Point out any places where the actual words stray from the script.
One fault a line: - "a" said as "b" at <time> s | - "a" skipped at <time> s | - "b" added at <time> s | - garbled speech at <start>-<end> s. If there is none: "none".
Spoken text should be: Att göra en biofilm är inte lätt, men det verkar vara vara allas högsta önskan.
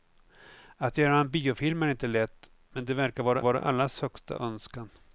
none